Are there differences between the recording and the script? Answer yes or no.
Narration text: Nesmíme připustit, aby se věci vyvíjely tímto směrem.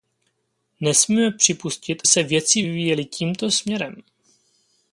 yes